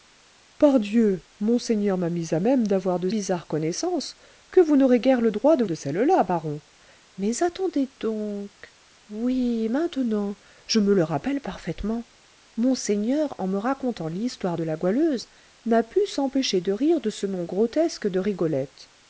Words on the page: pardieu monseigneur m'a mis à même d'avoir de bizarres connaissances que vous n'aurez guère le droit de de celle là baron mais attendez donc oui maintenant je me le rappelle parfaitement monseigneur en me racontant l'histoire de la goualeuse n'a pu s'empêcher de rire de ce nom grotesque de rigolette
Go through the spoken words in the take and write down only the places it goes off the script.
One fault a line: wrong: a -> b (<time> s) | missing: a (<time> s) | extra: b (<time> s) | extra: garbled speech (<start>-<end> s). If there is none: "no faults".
no faults